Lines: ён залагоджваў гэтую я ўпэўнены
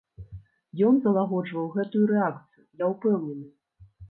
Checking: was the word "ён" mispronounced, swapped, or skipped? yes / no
no